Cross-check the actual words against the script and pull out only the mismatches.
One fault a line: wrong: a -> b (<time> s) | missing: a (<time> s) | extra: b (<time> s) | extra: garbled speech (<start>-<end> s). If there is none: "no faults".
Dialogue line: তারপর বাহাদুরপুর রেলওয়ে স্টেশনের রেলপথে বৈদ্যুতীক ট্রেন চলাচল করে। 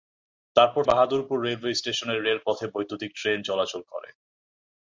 no faults